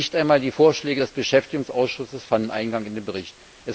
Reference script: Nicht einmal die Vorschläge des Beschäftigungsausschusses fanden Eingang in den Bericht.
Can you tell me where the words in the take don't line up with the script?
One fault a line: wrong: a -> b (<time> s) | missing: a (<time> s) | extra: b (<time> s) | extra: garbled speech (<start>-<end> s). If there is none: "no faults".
no faults